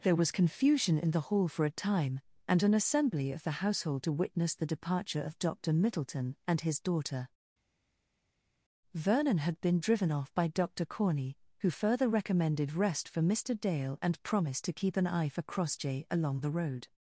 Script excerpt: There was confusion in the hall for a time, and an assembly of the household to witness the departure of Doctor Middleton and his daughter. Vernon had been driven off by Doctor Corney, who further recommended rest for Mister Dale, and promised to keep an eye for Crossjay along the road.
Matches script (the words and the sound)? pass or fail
pass